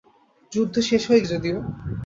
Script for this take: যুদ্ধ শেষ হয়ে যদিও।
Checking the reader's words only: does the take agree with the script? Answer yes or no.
yes